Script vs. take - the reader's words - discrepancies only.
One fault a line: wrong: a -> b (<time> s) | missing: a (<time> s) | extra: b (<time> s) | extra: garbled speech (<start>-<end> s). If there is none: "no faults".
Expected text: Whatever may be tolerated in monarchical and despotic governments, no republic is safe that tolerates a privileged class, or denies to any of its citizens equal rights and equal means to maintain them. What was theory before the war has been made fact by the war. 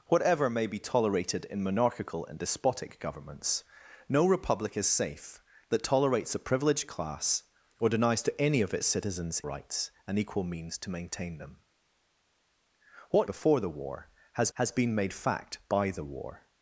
missing: equal (9.4 s)
missing: was theory (13.3 s)
extra: has (14.5 s)